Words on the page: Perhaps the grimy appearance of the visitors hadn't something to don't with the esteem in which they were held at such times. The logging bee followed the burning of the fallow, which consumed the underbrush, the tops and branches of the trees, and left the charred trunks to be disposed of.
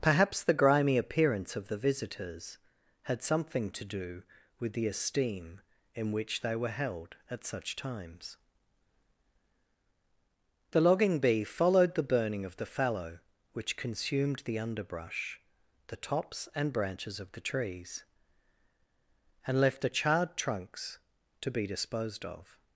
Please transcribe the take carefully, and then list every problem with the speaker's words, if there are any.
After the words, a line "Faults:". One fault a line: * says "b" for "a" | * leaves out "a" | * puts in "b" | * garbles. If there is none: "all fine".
Perhaps the grimy appearance of the visitors had something to do with the esteem in which they were held at such times. The logging bee followed the burning of the fallow, which consumed the underbrush, the tops and branches of the trees, and left the charred trunks to be disposed of.
Faults:
* says "had" for "hadn't"
* says "do" for "don't"